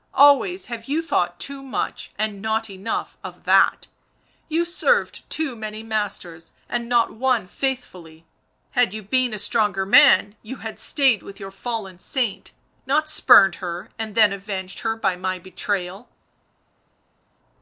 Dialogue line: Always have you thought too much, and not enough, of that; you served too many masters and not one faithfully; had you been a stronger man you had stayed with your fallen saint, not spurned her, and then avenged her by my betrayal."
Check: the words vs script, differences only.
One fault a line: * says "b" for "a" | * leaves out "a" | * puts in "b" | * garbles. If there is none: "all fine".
all fine